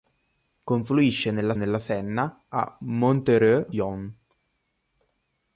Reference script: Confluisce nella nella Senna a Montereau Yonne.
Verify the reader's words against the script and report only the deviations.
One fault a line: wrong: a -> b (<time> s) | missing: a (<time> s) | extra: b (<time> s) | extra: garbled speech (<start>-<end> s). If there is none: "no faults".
no faults